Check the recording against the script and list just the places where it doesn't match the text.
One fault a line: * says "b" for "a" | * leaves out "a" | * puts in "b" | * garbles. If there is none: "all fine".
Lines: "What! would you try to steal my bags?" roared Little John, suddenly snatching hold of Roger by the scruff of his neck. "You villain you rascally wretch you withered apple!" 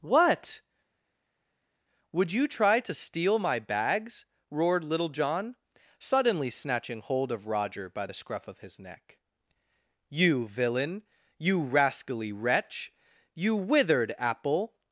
all fine